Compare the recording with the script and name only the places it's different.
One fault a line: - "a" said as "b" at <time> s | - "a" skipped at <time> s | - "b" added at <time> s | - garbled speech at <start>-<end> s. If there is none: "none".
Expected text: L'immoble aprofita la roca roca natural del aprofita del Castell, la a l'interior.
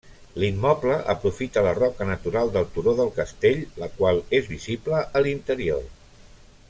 - "roca" skipped at 2.1 s
- "aprofita" said as "turó" at 2.8 s
- "qual és visible" added at 4.0 s